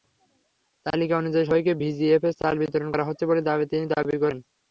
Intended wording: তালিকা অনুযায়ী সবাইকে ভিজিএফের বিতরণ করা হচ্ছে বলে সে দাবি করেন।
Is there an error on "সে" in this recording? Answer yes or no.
yes